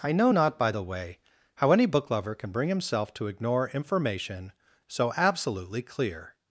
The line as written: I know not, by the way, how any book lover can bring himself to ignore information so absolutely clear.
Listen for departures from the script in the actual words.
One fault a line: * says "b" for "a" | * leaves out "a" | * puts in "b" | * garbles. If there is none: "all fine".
all fine